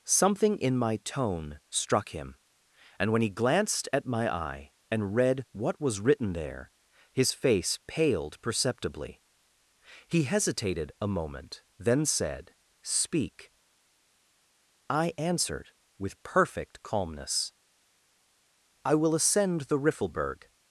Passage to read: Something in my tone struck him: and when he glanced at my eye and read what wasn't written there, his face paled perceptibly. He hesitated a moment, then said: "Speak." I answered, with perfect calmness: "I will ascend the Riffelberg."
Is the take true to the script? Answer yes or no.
no